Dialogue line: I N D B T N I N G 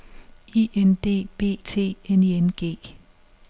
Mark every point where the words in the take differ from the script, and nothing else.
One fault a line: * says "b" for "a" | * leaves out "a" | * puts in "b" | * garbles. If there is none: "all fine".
all fine